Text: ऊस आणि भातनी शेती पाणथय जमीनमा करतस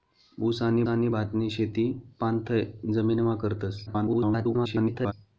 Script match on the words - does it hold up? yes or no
no